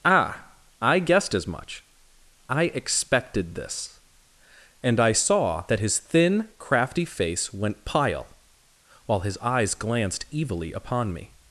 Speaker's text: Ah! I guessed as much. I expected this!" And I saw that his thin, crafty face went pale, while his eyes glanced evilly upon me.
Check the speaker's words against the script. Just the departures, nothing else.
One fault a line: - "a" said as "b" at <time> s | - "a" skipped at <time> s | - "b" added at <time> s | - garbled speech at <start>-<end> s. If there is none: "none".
- "pale" said as "pile" at 7.8 s